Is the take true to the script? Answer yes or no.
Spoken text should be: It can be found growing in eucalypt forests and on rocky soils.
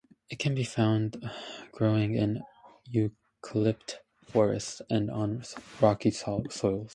yes